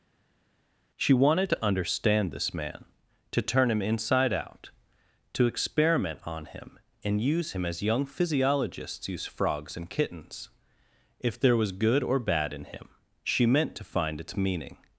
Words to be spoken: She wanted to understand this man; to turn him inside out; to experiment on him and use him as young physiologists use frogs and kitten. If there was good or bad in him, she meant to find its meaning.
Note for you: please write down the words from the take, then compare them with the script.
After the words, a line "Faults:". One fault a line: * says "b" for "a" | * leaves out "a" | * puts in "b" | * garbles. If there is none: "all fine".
She wanted to understand this man; to turn him inside out; to experiment on him and use him as young physiologists use frogs and kittens. If there was good or bad in him, she meant to find its meaning.
Faults:
* says "kittens" for "kitten"